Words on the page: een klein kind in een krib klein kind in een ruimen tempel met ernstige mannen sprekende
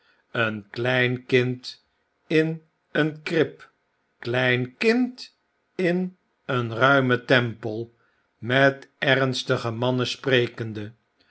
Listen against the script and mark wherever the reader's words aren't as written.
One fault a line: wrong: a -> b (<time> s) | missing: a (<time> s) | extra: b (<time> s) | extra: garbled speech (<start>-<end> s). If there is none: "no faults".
no faults